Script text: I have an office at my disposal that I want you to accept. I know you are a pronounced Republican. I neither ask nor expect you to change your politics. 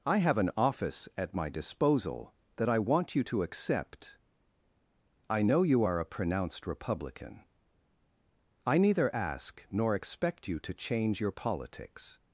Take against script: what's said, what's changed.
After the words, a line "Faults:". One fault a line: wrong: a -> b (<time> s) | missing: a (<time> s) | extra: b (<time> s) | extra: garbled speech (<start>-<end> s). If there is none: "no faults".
I have an office at my disposal that I want you to accept. I know you are a pronounced Republican. I neither ask nor expect you to change your politics.
Faults:
no faults